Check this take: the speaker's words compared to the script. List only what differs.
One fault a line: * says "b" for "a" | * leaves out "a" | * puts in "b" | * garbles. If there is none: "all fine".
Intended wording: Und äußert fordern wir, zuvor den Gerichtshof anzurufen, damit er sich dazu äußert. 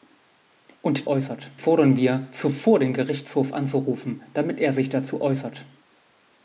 all fine